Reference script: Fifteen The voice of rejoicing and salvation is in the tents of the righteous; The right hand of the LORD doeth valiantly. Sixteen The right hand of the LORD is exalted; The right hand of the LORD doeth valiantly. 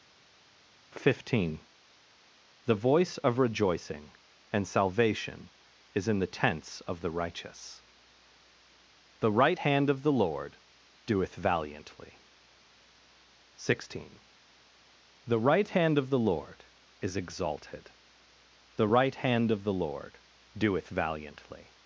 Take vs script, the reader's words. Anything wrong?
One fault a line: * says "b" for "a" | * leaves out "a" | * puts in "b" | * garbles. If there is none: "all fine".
all fine